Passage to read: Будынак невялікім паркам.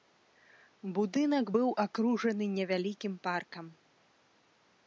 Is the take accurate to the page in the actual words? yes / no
no